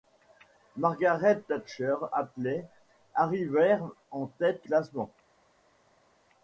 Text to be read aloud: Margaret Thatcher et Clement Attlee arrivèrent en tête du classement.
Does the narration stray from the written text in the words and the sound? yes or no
yes